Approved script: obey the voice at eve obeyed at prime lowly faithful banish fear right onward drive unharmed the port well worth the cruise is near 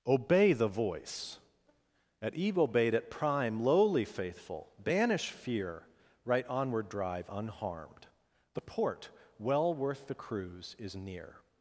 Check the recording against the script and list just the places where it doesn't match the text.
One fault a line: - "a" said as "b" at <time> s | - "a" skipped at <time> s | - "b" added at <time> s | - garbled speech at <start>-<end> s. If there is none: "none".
none